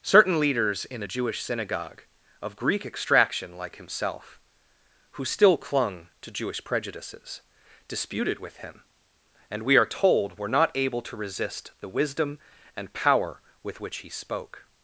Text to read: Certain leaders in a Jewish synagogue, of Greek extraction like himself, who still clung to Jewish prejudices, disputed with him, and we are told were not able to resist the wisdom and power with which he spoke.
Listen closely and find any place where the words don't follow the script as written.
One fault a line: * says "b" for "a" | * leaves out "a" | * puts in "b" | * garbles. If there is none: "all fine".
all fine